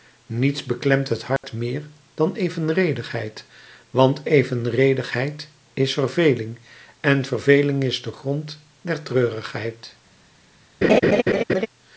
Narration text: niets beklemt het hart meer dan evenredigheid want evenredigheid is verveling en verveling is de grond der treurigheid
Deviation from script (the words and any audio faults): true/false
true